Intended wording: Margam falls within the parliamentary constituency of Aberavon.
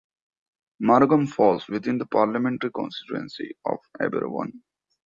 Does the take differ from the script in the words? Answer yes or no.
no